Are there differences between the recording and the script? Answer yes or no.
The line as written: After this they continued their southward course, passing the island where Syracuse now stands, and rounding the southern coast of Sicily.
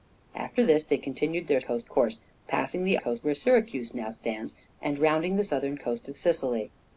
yes